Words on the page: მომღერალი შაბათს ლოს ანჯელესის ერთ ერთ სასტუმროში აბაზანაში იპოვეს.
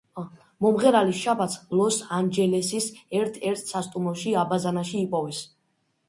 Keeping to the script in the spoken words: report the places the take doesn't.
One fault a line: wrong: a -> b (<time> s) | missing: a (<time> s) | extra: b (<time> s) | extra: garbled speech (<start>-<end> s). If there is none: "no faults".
no faults